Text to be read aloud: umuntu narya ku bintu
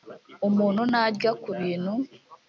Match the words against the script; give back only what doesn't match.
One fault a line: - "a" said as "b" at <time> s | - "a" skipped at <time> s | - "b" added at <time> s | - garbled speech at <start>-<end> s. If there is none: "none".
none